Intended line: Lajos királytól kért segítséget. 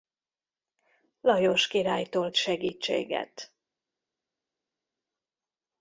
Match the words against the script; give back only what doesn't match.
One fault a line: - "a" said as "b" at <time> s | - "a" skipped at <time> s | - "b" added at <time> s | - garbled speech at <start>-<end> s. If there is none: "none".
- "kért" skipped at 2.3 s